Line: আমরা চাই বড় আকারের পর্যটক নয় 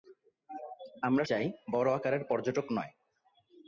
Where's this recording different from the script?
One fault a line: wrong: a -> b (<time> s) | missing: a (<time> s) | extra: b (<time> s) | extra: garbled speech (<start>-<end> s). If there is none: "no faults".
no faults